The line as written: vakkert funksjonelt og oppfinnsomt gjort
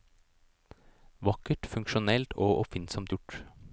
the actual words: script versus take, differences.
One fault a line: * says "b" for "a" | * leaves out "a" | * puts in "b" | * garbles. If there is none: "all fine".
all fine